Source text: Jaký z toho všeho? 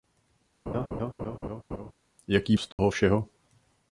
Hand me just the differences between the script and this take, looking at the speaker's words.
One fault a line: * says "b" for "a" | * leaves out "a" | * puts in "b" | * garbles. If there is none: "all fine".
all fine